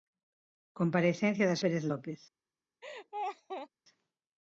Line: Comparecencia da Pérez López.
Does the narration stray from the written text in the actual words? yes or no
no